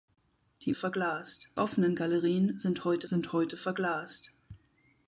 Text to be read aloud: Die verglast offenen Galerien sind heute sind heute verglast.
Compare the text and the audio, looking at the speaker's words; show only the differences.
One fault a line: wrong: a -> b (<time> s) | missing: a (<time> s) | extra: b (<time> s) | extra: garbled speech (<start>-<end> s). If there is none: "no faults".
no faults